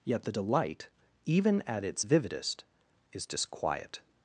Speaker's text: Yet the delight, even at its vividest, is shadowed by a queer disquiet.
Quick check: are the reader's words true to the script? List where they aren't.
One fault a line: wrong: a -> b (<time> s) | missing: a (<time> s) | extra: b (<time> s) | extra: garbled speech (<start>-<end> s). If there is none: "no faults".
missing: shadowed by a queer (3.3 s)